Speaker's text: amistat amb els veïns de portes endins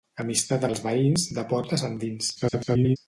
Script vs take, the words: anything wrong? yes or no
yes